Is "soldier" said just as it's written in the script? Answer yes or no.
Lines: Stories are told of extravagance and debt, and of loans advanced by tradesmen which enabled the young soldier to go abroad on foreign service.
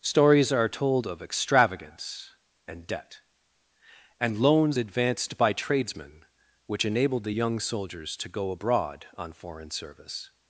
no